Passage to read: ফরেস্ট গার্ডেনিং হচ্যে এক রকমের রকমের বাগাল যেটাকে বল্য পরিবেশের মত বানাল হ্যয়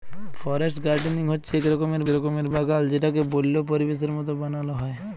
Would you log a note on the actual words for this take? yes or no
no